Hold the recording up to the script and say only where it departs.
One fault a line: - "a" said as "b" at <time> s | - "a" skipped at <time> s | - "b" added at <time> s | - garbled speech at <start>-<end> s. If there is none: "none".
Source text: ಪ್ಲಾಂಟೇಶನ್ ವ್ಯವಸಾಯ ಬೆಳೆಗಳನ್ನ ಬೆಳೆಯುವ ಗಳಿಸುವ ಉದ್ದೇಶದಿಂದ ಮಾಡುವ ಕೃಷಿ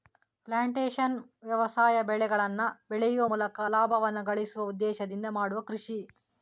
- "ಮೂಲಕ ಲಾಭವನ್ನ" added at 3.2 s